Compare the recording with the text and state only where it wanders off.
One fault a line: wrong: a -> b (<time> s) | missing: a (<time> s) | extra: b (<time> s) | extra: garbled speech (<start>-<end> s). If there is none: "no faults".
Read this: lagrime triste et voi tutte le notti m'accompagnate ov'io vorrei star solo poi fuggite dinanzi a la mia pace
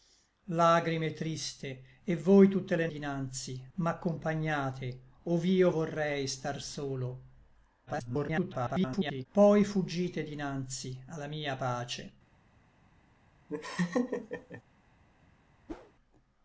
wrong: notti -> dinanzi (2.9 s)
extra: garbled speech (7.9-9.3 s)